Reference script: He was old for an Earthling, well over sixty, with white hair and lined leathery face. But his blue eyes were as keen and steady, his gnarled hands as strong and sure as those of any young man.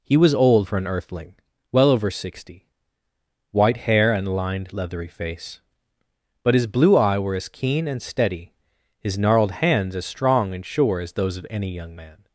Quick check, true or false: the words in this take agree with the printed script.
false